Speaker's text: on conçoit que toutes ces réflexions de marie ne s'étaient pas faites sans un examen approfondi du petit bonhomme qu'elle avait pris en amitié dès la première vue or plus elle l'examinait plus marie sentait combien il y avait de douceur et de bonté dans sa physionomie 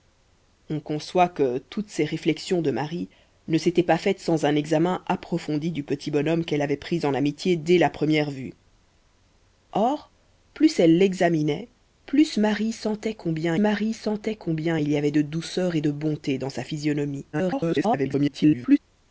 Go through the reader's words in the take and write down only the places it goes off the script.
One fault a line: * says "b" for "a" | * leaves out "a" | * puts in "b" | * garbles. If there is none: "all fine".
* puts in "marie sentait combien"
* garbles